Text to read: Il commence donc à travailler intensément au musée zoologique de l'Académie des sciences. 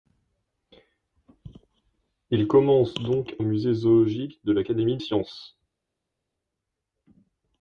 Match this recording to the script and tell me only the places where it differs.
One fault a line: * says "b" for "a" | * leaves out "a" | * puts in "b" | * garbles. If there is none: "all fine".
* leaves out "à travailler intensément"
* leaves out "des"